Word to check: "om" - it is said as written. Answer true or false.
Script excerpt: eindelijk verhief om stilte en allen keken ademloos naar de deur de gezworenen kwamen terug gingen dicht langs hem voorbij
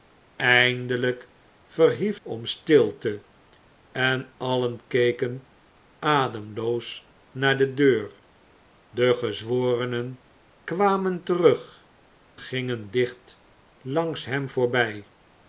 true